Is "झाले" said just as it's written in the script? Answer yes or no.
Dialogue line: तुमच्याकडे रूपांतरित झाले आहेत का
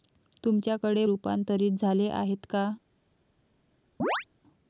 yes